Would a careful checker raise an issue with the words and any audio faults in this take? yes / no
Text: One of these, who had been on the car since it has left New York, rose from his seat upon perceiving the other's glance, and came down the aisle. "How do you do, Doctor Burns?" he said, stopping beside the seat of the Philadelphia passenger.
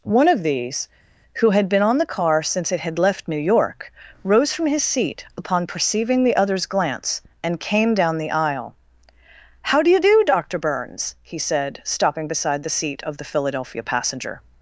yes